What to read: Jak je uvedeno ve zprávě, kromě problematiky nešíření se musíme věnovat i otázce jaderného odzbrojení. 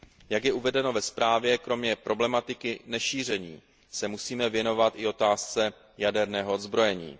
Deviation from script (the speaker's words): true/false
false